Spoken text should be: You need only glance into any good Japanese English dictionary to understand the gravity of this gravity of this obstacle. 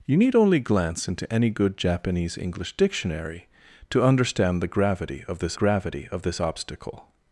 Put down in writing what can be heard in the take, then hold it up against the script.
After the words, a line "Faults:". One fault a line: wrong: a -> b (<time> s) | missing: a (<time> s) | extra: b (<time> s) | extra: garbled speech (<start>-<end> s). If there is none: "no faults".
You need only glance into any good Japanese English dictionary to understand the gravity of this gravity of this obstacle.
Faults:
no faults